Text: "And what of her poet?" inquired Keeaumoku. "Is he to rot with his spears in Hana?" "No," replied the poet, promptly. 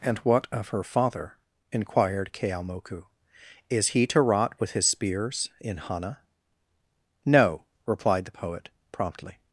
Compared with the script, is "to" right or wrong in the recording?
right